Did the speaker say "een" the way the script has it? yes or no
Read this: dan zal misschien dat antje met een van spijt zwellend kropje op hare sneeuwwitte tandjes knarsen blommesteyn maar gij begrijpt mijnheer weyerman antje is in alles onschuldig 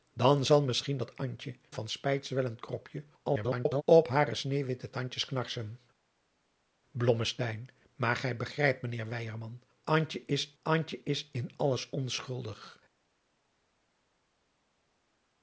no